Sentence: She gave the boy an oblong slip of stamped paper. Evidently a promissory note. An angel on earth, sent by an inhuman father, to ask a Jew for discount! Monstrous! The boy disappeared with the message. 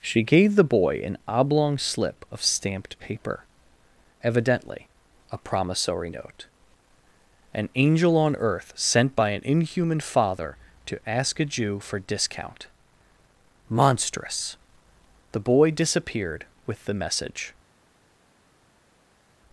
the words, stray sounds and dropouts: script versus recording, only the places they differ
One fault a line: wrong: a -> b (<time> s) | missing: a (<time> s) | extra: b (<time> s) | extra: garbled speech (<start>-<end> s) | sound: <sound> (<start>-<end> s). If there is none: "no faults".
no faults